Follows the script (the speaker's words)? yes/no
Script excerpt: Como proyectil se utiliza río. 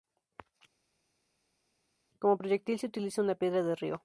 no